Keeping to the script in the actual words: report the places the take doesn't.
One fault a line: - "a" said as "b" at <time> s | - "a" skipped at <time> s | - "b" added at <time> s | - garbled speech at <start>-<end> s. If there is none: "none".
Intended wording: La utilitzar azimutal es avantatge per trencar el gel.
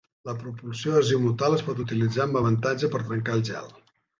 - "utilitzar" said as "propulsió" at 0.4 s
- "pot utilitzar amb" added at 1.7 s